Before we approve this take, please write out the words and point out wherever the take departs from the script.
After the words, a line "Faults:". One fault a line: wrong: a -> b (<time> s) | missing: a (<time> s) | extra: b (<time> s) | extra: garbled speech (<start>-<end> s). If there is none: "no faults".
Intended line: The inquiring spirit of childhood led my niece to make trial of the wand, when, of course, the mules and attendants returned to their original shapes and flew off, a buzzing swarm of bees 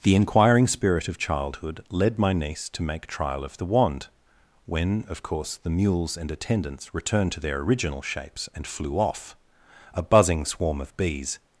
The inquiring spirit of childhood led my niece to make trial of the wand, when, of course, the mules and attendants returned to their original shapes and flew off, a buzzing swarm of bees
Faults:
no faults